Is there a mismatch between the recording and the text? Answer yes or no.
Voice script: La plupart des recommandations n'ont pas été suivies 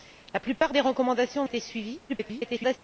yes